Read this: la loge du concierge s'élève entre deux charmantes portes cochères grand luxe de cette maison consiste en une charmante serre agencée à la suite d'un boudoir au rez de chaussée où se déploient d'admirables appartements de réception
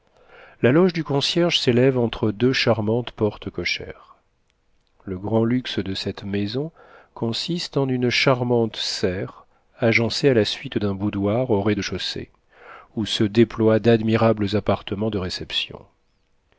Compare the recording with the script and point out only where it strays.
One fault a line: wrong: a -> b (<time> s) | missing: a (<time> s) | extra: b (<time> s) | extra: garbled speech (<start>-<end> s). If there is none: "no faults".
extra: le (5.0 s)